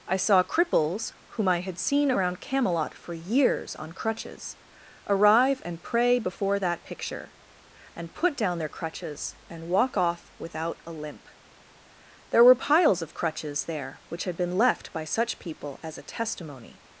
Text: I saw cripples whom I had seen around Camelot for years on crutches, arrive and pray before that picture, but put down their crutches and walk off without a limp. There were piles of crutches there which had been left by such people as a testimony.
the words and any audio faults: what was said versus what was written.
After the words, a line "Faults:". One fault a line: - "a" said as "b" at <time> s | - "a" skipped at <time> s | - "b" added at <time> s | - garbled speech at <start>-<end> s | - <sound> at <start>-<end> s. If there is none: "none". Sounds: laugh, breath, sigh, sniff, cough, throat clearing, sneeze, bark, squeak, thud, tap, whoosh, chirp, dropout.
I saw cripples whom I had seen around Camelot for years on crutches, arrive and pray before that picture, and put down their crutches and walk off without a limp. There were piles of crutches there which had been left by such people as a testimony.
Faults:
- "but" said as "and" at 8.0 s